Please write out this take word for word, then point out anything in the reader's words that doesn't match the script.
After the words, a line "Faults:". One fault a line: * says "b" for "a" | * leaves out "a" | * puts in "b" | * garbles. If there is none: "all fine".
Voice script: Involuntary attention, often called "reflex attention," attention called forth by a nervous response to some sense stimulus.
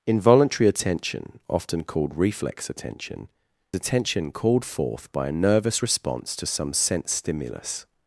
Involuntary attention, often called "reflex attention," attention called forth by a nervous response to some sense stimulus.
Faults:
all fine